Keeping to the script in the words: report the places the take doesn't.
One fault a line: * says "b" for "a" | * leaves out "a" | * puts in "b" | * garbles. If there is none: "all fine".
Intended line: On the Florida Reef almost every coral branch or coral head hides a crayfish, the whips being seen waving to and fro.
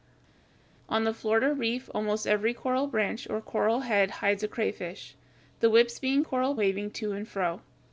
* says "coral" for "seen"